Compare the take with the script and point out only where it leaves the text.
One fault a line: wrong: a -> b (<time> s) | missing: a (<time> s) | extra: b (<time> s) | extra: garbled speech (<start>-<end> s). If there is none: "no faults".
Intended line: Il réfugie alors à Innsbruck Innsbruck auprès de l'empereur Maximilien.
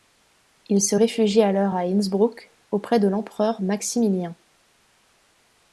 extra: se (0.8 s)
missing: Innsbruck (2.5 s)